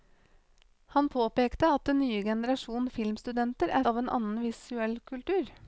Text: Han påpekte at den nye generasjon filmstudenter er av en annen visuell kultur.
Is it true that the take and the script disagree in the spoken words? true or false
false